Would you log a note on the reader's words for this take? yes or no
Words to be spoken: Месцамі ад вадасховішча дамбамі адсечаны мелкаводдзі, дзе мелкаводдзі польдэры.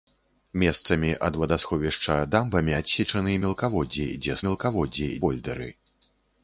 no